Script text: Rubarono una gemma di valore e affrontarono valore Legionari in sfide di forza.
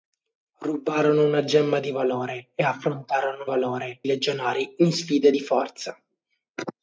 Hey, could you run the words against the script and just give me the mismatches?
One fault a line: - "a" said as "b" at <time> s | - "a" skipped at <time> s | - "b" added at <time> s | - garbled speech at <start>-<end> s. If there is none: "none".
none